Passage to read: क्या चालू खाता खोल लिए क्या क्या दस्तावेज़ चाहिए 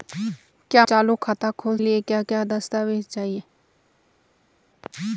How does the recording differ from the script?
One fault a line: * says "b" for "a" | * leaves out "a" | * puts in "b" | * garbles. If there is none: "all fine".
all fine